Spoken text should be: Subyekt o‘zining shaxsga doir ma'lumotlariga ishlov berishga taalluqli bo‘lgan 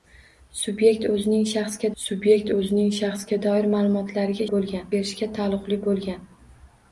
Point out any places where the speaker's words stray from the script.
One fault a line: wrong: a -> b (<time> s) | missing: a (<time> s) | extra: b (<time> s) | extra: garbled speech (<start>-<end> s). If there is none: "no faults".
extra: subyekt o‘zining shaxsga (2.0 s)
wrong: ishlov -> bo‘lgan (4.5 s)